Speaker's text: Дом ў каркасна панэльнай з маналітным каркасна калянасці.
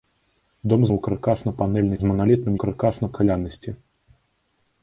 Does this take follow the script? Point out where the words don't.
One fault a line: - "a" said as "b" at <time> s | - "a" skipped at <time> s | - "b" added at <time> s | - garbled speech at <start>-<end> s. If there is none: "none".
none